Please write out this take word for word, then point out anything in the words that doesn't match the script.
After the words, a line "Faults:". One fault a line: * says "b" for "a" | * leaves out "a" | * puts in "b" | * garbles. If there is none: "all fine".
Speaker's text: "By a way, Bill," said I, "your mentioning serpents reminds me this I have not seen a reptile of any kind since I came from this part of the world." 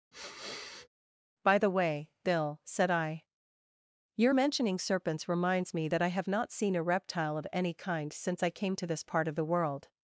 "By the way, Bill," said I, "your mentioning serpents reminds me that I have not seen a reptile of any kind since I came to this part of the world."
Faults:
* says "the" for "a"
* says "that" for "this"
* says "to" for "from"